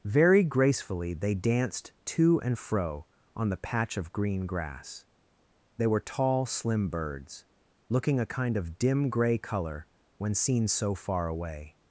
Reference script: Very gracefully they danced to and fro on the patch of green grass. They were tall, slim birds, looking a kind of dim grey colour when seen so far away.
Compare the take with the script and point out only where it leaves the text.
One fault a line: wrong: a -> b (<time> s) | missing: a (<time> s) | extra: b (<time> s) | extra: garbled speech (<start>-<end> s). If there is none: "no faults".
no faults